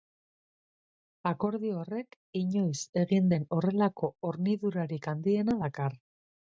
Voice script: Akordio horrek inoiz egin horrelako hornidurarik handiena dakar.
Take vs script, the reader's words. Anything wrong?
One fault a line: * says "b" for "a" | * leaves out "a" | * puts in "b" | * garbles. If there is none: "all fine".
* puts in "den"